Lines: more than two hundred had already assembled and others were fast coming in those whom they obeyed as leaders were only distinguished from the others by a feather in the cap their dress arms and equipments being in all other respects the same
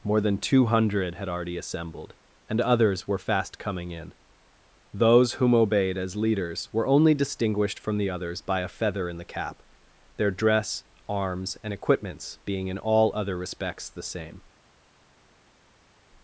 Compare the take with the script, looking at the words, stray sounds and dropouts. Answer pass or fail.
fail